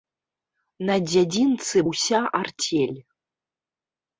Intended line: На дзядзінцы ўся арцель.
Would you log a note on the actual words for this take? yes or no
no